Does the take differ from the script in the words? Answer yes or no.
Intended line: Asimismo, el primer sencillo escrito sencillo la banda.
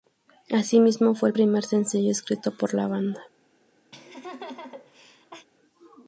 yes